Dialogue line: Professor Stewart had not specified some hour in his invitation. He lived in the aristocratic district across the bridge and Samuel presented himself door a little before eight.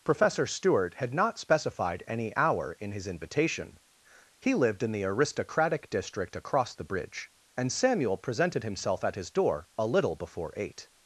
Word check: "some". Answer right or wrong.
wrong